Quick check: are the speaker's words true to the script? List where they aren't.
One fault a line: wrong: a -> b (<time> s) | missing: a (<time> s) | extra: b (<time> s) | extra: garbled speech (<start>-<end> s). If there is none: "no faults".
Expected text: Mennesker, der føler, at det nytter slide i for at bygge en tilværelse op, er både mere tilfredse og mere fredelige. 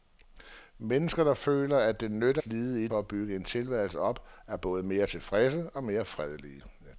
no faults